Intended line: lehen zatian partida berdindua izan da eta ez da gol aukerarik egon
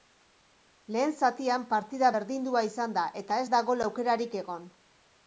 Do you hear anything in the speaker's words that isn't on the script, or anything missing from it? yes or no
no